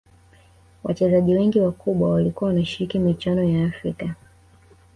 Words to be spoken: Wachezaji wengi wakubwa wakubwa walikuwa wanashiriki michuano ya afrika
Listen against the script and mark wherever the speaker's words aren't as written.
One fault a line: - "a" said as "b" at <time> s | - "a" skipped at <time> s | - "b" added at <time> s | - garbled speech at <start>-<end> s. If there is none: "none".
- "wakubwa" skipped at 2.1 s